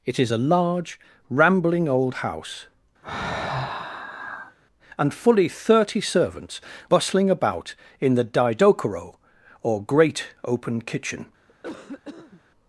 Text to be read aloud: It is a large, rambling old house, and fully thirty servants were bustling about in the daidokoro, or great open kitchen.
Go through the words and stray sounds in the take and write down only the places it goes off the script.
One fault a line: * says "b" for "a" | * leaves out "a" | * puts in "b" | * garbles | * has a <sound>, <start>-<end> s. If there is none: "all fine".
* has a sigh, 3.0-4.6 s
* leaves out "were"
* has a cough, 11.5-12.4 s